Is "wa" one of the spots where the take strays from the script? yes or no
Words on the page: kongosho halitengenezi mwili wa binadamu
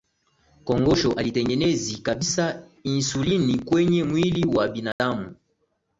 no